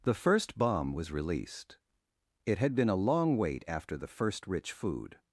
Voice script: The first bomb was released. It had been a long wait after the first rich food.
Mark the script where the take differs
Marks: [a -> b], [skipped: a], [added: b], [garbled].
The first bomb was released. It had been a long wait after the first rich food.